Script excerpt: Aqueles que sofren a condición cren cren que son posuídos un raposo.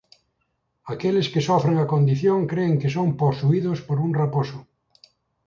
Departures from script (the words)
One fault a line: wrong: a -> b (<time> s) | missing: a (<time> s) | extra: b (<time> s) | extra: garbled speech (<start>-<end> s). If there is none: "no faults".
missing: cren (2.7 s)
extra: por (3.9 s)